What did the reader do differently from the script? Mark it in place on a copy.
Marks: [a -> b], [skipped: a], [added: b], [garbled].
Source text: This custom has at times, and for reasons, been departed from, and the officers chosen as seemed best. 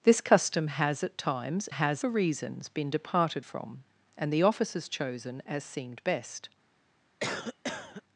This custom has at times, [and -> has] for reasons, been departed from, and the officers chosen as seemed best.